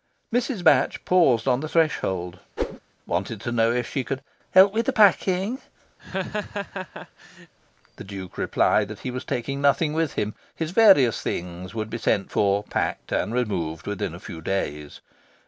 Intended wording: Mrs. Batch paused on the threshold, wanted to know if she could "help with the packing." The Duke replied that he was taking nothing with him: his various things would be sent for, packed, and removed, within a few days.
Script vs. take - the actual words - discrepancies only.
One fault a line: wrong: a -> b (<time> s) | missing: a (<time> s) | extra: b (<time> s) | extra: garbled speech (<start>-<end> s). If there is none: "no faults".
no faults